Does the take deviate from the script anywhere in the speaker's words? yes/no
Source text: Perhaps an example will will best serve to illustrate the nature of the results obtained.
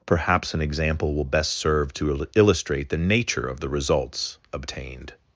yes